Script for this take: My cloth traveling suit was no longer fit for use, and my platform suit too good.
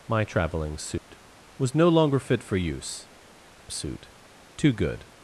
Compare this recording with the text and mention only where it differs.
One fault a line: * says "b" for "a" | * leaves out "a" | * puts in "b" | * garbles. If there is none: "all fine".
* leaves out "cloth"
* leaves out "and my platform"